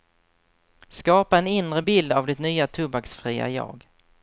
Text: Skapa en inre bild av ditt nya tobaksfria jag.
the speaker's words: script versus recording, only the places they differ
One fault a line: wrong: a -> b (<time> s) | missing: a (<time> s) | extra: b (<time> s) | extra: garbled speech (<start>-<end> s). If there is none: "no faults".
no faults